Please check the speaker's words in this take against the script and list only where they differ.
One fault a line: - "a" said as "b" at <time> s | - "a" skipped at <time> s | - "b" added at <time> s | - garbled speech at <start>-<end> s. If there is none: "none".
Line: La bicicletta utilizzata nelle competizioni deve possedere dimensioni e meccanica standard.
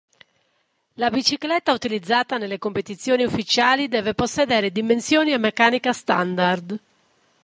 - "ufficiali" added at 3.2 s